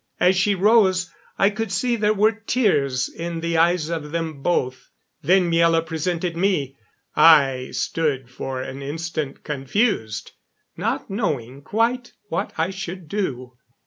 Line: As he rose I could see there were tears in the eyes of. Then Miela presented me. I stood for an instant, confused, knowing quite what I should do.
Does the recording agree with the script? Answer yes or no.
no